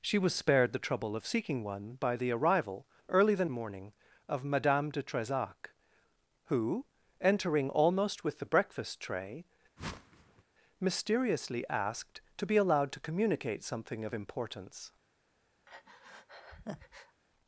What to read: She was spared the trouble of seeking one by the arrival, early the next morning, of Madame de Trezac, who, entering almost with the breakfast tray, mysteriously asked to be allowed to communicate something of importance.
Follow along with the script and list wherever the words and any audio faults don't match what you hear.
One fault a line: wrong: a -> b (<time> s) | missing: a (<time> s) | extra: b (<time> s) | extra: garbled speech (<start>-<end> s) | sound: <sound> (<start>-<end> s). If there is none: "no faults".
missing: next (3.5 s)
sound: whoosh (9.8-10.4 s)
sound: breath (15.7-17.2 s)